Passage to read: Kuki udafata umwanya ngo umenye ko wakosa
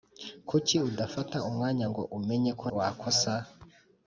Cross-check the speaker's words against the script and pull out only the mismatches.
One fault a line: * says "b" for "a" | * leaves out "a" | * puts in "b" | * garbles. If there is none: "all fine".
all fine